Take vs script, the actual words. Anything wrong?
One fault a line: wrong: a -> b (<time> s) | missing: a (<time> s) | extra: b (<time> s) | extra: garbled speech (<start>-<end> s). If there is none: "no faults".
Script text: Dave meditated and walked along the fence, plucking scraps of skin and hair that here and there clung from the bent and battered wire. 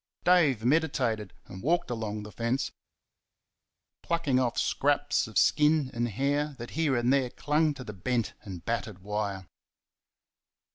extra: off (4.4 s)
wrong: from -> to (7.7 s)